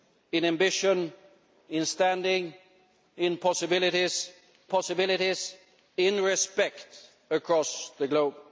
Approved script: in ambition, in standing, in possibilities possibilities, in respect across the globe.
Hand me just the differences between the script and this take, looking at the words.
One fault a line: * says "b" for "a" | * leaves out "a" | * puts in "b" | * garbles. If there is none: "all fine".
all fine